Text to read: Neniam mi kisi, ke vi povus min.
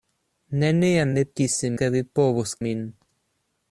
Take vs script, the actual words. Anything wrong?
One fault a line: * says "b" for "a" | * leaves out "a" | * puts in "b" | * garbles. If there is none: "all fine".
all fine